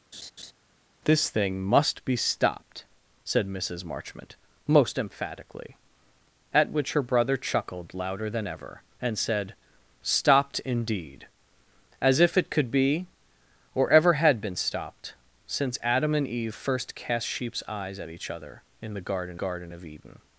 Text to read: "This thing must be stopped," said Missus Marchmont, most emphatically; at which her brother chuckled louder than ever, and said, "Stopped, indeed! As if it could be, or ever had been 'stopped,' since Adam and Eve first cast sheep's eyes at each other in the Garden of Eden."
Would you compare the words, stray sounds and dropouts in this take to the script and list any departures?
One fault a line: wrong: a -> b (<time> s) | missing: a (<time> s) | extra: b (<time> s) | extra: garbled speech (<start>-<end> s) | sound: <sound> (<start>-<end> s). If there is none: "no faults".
sound: laugh (0.1-0.5 s)
extra: Garden (19.3 s)